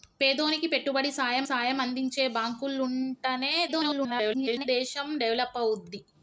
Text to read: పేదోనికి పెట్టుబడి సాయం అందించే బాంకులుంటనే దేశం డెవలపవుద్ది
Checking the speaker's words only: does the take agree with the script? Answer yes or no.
no